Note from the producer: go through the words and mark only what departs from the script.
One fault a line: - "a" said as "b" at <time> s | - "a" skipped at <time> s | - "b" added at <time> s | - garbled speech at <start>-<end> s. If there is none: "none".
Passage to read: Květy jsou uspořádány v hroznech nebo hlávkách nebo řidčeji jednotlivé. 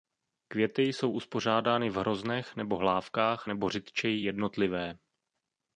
none